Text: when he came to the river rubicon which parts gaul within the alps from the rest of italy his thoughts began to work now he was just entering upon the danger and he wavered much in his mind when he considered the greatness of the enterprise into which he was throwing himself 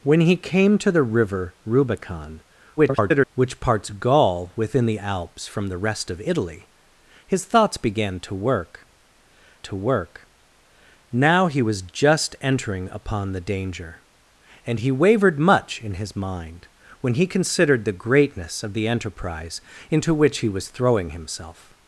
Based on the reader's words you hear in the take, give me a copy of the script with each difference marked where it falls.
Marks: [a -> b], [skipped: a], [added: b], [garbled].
when he came to the river rubicon [garbled] which parts gaul within the alps from the rest of italy his thoughts began to work [added: to work] now he was just entering upon the danger and he wavered much in his mind when he considered the greatness of the enterprise into which he was throwing himself